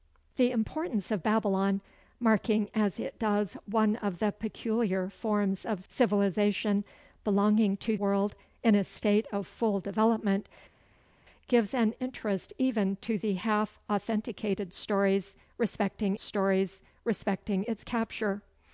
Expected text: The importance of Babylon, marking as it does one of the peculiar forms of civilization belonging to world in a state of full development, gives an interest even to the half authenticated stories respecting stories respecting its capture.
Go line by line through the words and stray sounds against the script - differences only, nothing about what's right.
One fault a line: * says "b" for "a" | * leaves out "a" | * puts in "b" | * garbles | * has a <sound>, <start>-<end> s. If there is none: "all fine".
all fine